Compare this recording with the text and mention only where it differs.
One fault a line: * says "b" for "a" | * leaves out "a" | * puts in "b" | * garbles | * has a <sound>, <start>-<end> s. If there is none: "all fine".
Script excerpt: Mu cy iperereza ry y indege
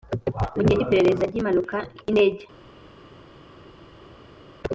* puts in "gihe"
* puts in "impanuka"